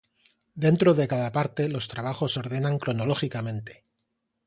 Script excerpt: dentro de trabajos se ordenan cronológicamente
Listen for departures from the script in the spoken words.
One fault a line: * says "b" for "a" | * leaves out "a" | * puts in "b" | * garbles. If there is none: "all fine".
* puts in "cada parte los"